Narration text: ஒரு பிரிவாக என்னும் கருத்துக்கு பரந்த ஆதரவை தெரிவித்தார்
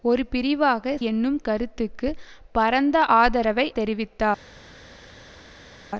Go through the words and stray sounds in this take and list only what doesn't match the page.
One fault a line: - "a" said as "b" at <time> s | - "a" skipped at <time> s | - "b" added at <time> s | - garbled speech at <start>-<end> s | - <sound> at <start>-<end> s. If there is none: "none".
none